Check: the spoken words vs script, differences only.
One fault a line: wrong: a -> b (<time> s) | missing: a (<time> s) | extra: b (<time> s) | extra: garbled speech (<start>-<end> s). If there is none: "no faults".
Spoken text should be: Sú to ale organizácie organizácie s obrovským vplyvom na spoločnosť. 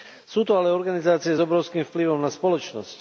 missing: organizácie (1.4 s)